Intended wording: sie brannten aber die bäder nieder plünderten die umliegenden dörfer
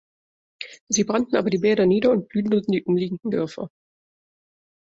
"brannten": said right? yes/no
yes